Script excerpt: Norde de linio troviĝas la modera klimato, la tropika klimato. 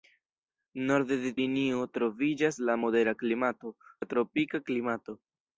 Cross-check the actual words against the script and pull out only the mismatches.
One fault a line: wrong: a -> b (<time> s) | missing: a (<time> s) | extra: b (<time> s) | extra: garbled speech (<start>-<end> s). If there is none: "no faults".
no faults